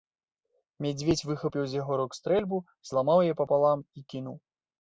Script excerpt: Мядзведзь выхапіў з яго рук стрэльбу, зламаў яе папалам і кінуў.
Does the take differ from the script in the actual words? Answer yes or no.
no